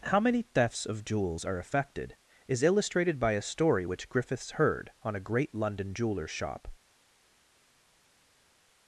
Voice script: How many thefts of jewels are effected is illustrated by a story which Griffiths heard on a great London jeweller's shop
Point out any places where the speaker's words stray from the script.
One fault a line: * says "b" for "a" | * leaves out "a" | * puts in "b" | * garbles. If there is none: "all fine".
all fine